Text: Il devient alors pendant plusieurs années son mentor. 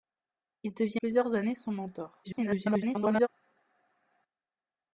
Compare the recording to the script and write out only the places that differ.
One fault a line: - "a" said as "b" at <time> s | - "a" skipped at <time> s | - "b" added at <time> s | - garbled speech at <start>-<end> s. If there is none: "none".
- "alors pendant" skipped at 1.0 s
- garbled speech at 2.2-3.3 s